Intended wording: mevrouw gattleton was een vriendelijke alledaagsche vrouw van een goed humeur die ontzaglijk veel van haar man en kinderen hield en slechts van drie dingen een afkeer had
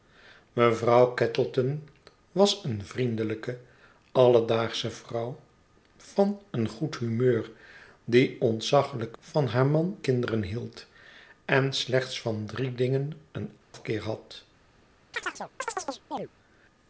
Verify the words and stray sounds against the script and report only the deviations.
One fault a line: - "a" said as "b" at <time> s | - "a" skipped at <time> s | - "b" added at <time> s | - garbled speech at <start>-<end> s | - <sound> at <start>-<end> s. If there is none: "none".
- "veel" skipped at 9.2 s
- "en" skipped at 10.0 s
- dropout at 13.6-13.7 s
- chirp at 15.1-16.3 s